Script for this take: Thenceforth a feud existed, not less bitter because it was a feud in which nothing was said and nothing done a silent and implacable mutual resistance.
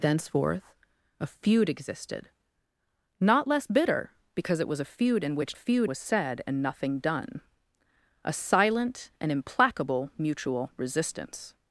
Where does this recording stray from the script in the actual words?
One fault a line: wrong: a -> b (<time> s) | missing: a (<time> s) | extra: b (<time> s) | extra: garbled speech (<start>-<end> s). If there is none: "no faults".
wrong: nothing -> feud (5.5 s)